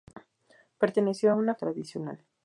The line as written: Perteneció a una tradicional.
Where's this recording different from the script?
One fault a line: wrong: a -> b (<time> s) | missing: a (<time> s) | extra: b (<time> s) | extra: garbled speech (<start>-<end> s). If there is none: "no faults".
no faults